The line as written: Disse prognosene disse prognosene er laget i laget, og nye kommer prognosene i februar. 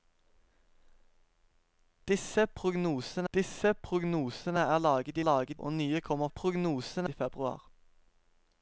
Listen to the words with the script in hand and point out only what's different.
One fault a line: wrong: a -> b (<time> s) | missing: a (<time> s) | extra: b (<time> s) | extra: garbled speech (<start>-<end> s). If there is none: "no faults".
no faults